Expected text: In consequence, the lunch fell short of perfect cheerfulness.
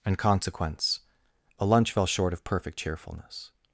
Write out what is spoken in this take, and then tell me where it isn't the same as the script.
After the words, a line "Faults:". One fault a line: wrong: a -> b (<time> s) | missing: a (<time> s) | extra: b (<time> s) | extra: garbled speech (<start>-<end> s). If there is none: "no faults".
In consequence, a lunch fell short of perfect cheerfulness.
Faults:
wrong: the -> a (1.6 s)